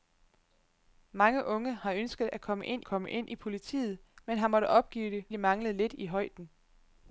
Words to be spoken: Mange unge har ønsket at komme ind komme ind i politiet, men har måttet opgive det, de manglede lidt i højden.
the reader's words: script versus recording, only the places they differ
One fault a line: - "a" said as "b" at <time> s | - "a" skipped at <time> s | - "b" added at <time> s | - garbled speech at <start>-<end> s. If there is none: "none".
none